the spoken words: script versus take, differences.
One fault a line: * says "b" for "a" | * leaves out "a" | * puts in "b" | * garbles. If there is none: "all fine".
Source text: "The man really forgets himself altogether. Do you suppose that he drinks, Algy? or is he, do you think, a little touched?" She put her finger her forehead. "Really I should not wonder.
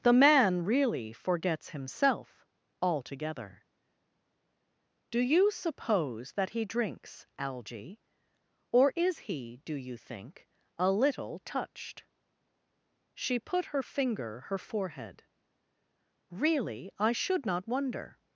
all fine